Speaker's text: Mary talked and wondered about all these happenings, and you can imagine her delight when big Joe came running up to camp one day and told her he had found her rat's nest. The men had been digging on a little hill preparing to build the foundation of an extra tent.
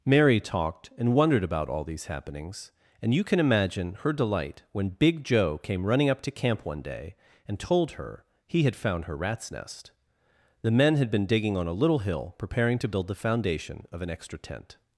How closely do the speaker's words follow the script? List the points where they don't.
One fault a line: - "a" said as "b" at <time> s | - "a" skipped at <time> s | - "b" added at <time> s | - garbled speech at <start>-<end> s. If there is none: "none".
none